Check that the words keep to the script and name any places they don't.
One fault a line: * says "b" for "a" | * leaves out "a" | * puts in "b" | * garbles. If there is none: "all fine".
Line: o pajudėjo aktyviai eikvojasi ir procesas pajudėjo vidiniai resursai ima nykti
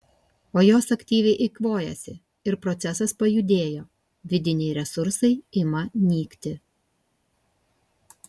* says "jos" for "pajudėjo"